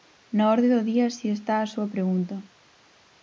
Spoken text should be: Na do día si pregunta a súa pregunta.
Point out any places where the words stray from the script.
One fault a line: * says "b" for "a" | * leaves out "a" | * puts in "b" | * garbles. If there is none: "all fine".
* puts in "orde"
* says "está" for "pregunta"